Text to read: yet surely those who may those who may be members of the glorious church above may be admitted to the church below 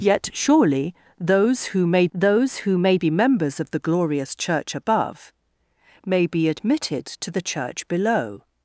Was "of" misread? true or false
false